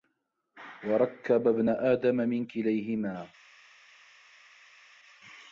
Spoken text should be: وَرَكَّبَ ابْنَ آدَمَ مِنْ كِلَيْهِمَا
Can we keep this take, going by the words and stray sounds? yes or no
yes